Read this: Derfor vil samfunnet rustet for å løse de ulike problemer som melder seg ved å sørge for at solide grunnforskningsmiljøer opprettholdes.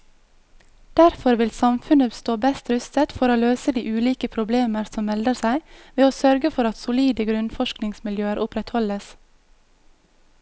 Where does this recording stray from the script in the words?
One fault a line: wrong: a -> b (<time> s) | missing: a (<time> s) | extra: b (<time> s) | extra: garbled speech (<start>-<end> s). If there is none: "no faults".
extra: stå best (2.2 s)